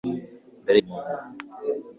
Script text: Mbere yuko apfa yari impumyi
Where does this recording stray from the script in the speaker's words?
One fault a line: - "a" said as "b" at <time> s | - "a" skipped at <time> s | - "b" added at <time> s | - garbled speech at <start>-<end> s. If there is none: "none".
- "yuko apfa yari" skipped at 0.8 s